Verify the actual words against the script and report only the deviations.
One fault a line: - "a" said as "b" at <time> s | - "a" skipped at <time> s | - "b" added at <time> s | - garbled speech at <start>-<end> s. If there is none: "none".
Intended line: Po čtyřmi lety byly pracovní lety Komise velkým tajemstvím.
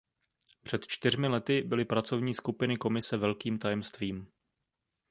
- "Po" said as "Před" at 0.6 s
- "lety" said as "skupiny" at 2.3 s